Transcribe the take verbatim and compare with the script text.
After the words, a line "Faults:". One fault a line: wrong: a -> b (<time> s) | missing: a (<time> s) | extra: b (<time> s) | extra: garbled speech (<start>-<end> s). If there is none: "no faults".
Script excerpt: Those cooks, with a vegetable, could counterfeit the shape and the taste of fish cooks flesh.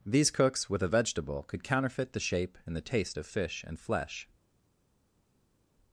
These cooks, with a vegetable, could counterfeit the shape and the taste of fish and flesh.
Faults:
wrong: Those -> These (0.1 s)
wrong: cooks -> and (3.7 s)